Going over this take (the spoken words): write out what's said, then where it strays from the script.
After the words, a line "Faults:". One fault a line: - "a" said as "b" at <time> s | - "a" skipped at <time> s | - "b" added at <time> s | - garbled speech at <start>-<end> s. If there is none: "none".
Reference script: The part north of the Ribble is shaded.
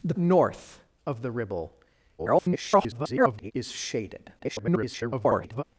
The north of the Ribble [garbled] is shaded. [garbled]
Faults:
- "part" skipped at 0.1 s
- garbled speech at 2.2-3.5 s
- garbled speech at 4.4-5.6 s